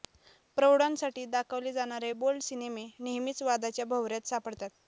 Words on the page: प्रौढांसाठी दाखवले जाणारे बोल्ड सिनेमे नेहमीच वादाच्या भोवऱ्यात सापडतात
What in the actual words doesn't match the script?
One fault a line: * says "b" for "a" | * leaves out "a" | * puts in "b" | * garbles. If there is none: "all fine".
all fine